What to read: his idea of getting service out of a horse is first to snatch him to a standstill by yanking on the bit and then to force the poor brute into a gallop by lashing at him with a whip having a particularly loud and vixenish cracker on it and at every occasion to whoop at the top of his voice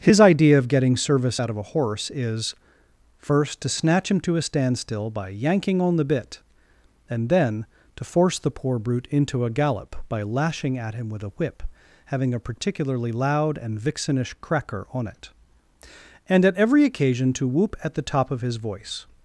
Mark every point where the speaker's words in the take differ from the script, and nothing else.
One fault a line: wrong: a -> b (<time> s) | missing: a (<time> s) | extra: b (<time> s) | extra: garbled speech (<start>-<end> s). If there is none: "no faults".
no faults